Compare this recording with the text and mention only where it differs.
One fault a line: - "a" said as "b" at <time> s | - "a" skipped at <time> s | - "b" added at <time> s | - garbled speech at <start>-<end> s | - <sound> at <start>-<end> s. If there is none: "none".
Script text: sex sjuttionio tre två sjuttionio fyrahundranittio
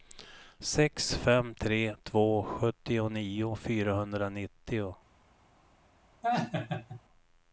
- "sjuttionio" said as "fem" at 1.1 s
- laugh at 6.2-7.0 s